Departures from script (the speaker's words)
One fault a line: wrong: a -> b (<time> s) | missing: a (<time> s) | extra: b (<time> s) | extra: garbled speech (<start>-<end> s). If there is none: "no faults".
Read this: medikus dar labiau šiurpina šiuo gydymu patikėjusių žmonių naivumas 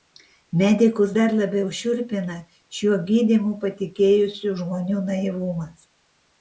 no faults